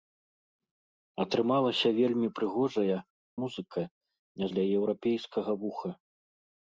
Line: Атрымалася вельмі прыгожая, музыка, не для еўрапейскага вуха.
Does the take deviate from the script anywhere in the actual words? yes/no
no